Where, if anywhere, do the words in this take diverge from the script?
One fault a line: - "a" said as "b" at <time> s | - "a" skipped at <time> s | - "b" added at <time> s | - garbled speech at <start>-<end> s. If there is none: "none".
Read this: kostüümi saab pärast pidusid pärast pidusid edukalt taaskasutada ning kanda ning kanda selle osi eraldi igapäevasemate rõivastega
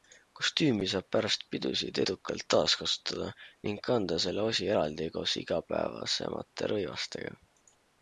- "pärast pidusid" skipped at 2.0 s
- "ning kanda" skipped at 4.2 s
- "koos" added at 5.2 s